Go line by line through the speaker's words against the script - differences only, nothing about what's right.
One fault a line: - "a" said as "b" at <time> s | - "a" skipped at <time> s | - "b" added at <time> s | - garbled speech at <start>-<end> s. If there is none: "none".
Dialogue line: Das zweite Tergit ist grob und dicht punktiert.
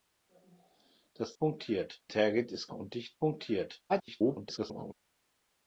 - "zweite" said as "punktiert" at 1.4 s
- "grob" skipped at 2.7 s
- garbled speech at 3.9-4.9 s